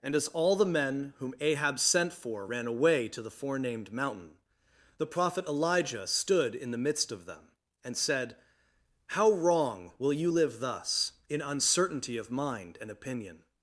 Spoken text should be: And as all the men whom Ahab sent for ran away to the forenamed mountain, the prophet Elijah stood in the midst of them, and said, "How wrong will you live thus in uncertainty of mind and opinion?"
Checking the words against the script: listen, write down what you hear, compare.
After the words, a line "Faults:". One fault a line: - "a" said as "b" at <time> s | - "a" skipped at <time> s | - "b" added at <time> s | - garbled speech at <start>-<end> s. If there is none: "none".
And as all the men whom Ahab sent for ran away to the forenamed mountain, the prophet Elijah stood in the midst of them, and said, "How wrong will you live thus in uncertainty of mind and opinion?"
Faults:
none